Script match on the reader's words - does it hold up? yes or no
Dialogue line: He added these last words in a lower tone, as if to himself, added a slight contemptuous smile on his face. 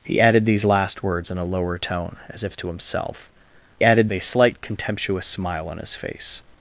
yes